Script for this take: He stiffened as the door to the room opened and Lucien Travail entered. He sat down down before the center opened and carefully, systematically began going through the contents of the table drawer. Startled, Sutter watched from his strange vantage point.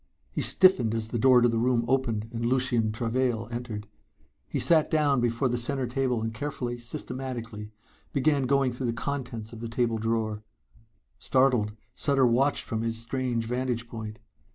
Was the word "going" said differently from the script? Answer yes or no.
no